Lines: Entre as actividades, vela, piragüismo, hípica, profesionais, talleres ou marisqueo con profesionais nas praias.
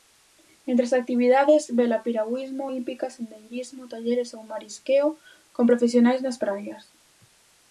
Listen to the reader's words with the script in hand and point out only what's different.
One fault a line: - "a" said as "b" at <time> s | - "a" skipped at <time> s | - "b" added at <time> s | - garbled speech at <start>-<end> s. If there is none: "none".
- "profesionais" said as "sendeirismo" at 3.2 s